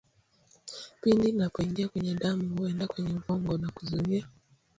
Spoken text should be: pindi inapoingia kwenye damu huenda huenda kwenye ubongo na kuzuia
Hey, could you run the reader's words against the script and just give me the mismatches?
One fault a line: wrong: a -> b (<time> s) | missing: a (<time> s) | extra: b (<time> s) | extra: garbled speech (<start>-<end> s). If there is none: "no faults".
missing: huenda (2.9 s)